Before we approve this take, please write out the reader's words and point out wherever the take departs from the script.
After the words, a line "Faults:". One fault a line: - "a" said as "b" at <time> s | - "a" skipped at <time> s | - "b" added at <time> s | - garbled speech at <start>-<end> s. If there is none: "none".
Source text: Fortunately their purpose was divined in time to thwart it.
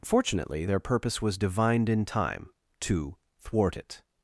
Fortunately their purpose was divined in time to thwart it.
Faults:
none